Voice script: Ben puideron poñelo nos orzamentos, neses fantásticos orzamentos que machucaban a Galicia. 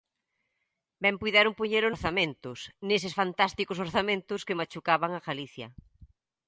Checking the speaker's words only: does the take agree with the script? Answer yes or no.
no